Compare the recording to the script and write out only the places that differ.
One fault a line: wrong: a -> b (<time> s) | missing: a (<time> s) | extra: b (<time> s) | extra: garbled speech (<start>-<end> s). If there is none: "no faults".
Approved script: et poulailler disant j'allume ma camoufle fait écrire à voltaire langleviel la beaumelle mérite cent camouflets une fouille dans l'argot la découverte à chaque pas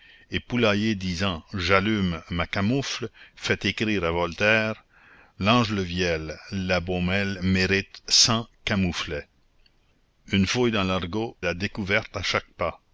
no faults